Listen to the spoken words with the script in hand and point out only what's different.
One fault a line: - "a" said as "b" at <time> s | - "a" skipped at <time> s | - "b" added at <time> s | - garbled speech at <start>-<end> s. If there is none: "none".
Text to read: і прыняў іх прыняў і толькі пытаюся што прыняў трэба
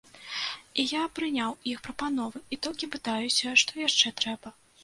- "я" added at 0.9 s
- "прыняў" said as "прапановы" at 1.9 s
- "прыняў" said as "яшчэ" at 3.9 s